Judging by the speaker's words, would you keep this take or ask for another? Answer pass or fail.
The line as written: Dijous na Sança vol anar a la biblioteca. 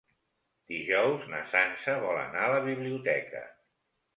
pass